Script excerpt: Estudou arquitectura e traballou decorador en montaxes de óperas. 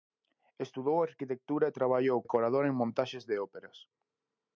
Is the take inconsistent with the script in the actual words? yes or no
no